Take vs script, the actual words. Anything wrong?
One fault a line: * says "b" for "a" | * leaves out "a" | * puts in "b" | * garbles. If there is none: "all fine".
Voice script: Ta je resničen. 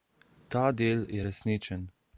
* puts in "del"